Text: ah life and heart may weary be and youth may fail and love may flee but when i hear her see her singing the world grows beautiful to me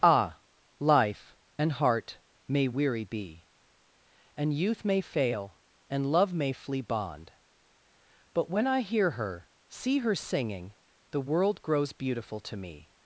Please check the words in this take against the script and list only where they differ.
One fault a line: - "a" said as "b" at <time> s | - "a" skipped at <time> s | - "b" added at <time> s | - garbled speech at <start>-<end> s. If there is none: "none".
- "bond" added at 6.8 s